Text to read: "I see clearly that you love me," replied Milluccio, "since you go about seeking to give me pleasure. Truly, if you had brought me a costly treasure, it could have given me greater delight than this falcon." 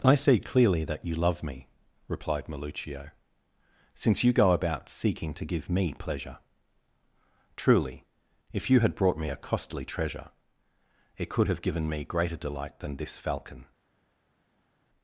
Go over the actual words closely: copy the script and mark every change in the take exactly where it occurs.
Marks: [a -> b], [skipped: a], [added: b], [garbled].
"I see clearly that you love me," replied Milluccio, "since you go about seeking to give me pleasure. Truly, if you had brought me a costly treasure, it could have given me greater delight than this falcon."